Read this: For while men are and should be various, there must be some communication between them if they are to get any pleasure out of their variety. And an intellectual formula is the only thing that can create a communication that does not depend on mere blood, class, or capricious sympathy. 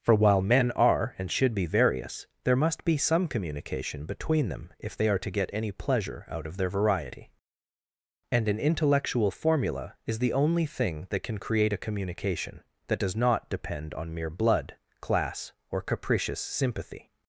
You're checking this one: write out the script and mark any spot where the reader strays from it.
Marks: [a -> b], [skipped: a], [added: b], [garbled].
For while men are and should be various, there must be some communication between them if they are to get any pleasure out of their variety. And an intellectual formula is the only thing that can create a communication that does not depend on mere blood, class, or capricious sympathy.